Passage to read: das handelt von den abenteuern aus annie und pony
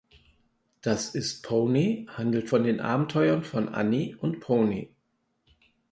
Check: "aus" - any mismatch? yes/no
yes